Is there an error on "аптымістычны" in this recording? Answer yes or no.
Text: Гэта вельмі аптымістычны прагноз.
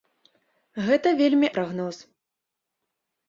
yes